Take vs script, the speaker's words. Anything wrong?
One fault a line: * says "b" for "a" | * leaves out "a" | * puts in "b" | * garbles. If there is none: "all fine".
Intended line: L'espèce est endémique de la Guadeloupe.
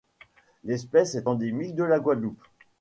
all fine